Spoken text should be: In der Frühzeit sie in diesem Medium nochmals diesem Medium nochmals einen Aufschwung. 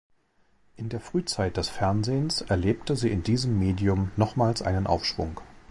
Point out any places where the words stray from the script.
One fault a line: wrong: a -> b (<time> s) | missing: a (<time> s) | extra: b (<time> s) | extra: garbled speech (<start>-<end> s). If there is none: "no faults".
wrong: sie in diesem Medium nochmals -> des Fernsehens erlebte sie in (1.6 s)